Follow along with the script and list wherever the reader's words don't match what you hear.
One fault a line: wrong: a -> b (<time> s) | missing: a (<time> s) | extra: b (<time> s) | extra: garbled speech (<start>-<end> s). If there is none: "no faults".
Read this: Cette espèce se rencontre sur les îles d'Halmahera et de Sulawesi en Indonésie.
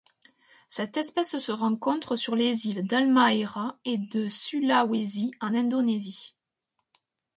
no faults